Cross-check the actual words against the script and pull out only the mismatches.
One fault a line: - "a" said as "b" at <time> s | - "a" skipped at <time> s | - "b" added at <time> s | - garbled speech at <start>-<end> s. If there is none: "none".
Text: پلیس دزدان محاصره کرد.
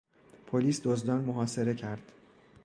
none